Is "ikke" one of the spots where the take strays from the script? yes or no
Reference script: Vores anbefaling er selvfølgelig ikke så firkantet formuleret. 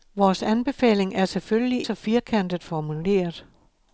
yes